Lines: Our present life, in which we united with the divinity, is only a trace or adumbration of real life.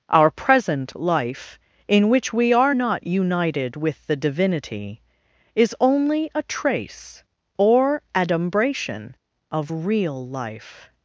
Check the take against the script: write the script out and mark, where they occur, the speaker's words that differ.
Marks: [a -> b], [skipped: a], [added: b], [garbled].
Our present life, in which we [added: are not] united with the divinity, is only a trace or adumbration of real life.